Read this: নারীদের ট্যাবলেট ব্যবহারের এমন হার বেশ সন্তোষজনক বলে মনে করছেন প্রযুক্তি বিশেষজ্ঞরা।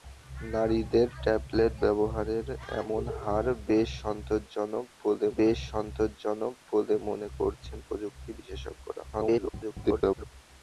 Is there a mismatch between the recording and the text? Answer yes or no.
yes